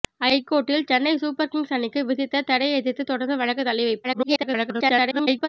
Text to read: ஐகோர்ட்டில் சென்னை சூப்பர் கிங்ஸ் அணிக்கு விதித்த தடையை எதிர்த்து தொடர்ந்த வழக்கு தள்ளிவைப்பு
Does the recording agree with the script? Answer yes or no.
no